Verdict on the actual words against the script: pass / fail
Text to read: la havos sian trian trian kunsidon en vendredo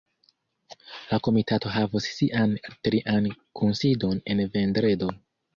fail